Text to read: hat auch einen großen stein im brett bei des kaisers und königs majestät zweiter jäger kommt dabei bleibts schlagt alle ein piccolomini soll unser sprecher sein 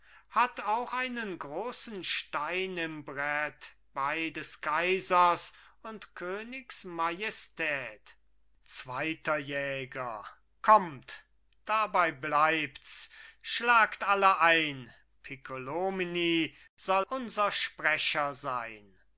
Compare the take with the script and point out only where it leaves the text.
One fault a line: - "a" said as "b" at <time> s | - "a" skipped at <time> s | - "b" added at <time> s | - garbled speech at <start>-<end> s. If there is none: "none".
none